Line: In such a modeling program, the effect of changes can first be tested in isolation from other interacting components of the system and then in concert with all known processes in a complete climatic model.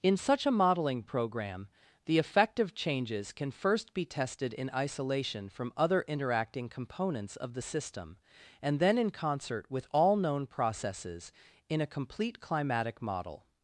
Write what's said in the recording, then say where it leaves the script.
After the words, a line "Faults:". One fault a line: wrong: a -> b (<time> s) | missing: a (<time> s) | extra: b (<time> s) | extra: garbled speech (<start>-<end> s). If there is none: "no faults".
In such a modeling program, the effect of changes can first be tested in isolation from other interacting components of the system and then in concert with all known processes in a complete climatic model.
Faults:
no faults